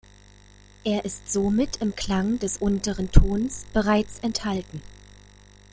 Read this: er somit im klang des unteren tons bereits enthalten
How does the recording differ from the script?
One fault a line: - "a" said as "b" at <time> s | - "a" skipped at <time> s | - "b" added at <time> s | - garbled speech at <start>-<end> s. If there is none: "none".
- "ist" added at 1.1 s